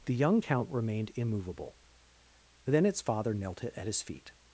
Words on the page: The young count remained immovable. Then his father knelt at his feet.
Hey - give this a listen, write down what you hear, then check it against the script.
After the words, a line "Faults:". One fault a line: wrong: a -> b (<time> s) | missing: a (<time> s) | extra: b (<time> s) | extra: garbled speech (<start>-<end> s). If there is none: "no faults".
The young count remained immovable. Then its father knelt at his feet.
Faults:
wrong: his -> its (2.9 s)